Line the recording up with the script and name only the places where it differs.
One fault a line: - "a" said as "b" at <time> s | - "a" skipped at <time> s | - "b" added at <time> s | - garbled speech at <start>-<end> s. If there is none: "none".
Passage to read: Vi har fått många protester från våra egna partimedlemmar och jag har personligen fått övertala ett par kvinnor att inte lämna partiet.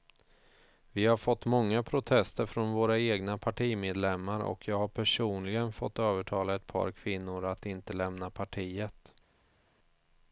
none